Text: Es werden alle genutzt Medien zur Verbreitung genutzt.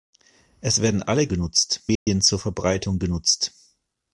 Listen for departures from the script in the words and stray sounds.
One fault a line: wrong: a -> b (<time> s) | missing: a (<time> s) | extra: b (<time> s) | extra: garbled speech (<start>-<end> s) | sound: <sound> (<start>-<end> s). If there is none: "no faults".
sound: dropout (2.0-2.1 s)